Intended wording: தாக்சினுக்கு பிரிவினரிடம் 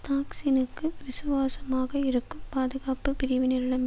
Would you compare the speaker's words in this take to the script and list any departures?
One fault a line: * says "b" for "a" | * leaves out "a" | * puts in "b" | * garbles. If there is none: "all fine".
* puts in "விசுவாசமாக இருக்கும் பாதுகாப்பு"